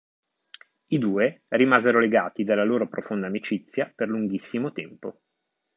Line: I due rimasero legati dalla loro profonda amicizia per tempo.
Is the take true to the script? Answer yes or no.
no